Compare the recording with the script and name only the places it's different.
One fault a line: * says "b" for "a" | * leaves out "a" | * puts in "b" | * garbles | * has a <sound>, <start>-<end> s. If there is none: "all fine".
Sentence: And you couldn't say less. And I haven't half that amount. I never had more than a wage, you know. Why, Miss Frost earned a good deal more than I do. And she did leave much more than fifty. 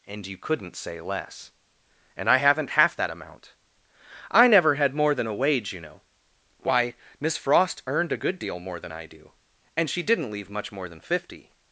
* says "didn't" for "did"